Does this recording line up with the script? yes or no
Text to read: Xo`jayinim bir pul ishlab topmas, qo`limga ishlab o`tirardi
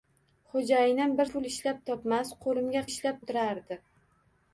yes